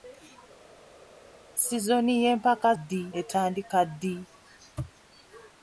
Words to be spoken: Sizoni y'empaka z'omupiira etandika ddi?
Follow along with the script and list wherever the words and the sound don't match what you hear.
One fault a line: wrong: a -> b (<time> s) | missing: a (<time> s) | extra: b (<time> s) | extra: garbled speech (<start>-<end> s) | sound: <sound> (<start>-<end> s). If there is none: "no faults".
wrong: z'omupiira -> ddi (2.8 s)